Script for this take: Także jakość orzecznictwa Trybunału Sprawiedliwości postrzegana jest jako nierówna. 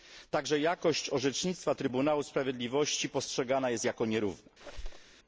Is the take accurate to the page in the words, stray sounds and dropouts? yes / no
no